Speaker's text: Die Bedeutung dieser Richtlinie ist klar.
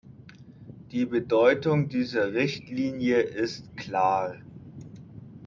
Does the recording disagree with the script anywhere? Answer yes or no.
no